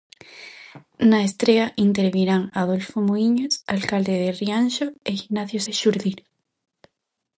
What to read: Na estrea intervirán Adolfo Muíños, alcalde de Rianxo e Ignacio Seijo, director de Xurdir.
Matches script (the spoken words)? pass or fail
fail